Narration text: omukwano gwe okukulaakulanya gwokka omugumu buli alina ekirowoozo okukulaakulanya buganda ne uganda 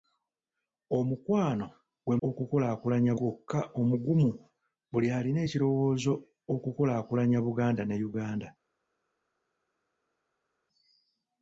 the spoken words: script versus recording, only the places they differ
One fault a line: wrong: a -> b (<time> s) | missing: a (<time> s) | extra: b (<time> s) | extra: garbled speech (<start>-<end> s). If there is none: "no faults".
no faults